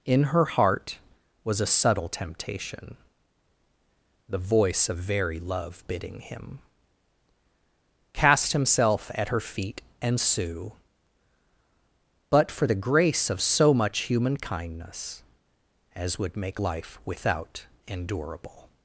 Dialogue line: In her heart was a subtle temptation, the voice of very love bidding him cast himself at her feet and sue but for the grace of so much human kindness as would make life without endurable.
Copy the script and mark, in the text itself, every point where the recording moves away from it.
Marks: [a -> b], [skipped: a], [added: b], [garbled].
In her heart was a subtle temptation, the voice of very love bidding him cast himself at her feet and sue but for the grace of so much human kindness as would make life without endurable.